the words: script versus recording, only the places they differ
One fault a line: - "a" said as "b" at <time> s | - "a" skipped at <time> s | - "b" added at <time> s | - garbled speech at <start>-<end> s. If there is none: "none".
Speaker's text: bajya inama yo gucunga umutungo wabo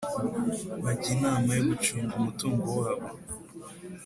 none